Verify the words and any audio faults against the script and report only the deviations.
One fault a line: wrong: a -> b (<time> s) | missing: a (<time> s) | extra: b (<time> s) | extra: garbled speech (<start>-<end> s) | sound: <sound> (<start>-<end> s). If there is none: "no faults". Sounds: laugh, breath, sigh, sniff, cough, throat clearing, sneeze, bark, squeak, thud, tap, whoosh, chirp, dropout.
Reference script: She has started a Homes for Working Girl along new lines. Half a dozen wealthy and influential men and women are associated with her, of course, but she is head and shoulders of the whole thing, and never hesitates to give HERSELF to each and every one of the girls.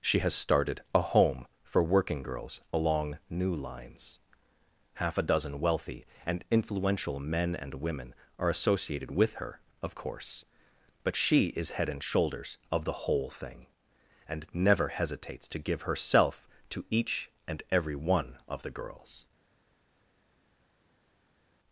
wrong: Homes -> Home (1.0 s)
wrong: Girl -> Girls (2.2 s)